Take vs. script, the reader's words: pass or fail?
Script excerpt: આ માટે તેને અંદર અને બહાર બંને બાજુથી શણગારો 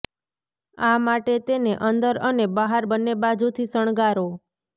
pass